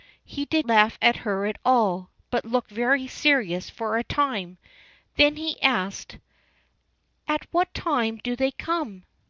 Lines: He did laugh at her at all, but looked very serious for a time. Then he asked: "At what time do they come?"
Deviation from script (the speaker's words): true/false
false